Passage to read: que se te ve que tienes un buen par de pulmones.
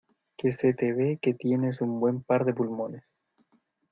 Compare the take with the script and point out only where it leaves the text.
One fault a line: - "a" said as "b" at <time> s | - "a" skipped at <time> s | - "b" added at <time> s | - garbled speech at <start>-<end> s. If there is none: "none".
none